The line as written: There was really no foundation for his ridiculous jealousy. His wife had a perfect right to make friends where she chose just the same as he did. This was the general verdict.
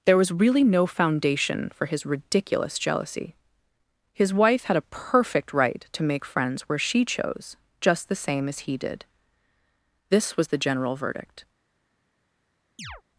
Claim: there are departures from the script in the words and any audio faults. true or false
true